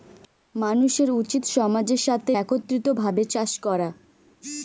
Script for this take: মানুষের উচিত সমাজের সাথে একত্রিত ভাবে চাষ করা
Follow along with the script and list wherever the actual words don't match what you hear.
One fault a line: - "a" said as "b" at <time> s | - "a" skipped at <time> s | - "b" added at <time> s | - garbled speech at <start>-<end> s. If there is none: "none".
none